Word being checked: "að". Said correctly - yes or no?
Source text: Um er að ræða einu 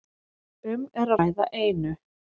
no